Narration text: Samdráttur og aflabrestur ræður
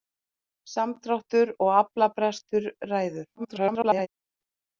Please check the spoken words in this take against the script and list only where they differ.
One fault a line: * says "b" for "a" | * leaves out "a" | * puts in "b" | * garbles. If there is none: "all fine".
* garbles